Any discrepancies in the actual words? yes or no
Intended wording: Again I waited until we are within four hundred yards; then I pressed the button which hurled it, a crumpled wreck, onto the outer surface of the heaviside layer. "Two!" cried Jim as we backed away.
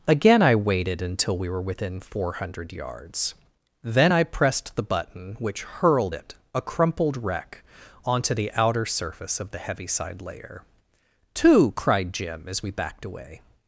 yes